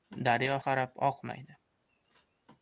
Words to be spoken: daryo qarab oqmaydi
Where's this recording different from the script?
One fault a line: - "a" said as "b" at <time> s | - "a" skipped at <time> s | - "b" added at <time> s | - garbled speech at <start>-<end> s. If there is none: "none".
none